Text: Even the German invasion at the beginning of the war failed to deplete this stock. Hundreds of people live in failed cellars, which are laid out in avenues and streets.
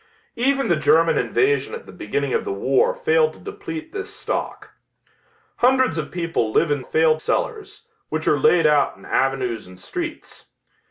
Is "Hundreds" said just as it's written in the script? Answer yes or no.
yes